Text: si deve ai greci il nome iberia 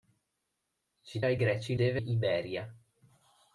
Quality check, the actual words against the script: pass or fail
fail